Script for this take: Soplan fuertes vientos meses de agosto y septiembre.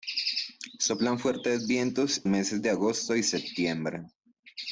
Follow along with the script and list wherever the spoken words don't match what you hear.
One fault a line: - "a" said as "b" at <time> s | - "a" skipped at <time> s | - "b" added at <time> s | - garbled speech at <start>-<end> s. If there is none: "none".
none